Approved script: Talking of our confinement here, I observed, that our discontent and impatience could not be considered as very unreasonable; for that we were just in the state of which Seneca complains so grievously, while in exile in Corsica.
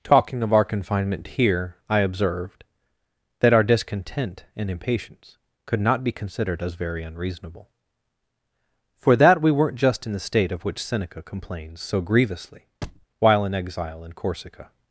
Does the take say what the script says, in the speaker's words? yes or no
no